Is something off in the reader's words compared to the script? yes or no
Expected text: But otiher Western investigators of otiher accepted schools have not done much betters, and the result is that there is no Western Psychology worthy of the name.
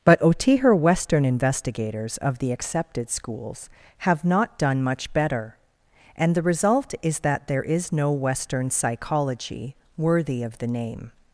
yes